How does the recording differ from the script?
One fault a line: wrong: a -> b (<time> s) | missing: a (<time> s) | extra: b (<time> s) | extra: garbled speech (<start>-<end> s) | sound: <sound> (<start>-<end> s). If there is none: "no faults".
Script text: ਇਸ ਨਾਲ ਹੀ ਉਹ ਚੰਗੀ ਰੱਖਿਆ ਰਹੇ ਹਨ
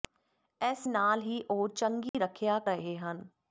sound: dropout (2.1-2.1 s)